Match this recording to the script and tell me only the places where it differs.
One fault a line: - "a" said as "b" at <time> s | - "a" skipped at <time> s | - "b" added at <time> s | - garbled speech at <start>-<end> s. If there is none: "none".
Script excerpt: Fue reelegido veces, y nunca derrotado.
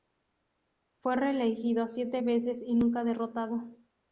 - "siete" added at 1.9 s